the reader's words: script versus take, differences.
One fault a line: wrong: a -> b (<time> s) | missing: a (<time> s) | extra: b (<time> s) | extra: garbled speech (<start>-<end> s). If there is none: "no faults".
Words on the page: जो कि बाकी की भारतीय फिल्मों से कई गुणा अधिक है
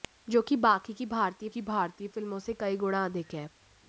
extra: की भारतीय (1.5 s)